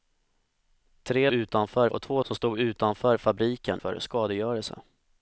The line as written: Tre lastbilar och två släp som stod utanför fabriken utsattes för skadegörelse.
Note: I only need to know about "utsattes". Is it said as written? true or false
false